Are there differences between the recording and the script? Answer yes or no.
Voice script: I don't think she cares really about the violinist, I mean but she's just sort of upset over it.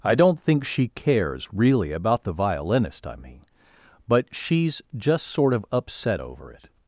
no